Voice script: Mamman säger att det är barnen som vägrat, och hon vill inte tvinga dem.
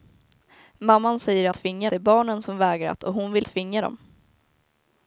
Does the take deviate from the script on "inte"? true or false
true